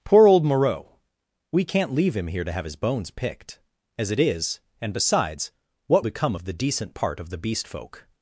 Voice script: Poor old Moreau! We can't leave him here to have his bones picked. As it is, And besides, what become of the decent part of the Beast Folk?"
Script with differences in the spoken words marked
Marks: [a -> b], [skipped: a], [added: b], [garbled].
Poor old Moreau! We can't leave him here to have his bones picked. As it is, And besides, what become of the decent part of the Beast Folk?"